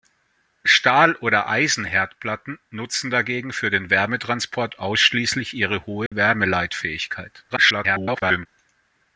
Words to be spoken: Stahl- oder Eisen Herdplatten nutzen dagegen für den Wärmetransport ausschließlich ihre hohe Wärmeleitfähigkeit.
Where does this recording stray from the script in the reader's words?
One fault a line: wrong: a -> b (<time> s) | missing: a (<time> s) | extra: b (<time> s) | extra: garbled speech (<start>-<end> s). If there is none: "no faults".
extra: garbled speech (7.5-8.5 s)